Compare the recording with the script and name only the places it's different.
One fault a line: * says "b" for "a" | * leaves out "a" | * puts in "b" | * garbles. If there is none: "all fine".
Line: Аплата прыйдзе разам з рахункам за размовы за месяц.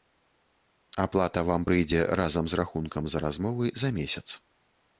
* puts in "вам"